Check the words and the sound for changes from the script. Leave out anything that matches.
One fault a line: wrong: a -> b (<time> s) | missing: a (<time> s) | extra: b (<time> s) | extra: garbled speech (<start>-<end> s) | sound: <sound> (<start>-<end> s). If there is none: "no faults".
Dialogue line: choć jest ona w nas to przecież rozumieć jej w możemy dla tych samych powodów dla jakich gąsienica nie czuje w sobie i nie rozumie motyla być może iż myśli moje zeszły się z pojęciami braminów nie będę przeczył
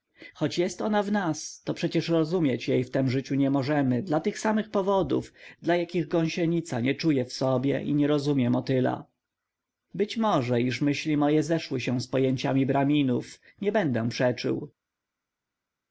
extra: tem życiu nie (2.9 s)